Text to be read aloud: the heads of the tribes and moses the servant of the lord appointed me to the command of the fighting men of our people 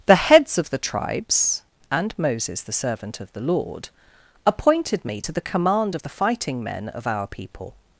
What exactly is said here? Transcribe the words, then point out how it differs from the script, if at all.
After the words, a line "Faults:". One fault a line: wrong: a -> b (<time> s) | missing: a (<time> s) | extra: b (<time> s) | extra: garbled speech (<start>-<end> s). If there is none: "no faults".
the heads of the tribes and moses the servant of the lord appointed me to the command of the fighting men of our people
Faults:
no faults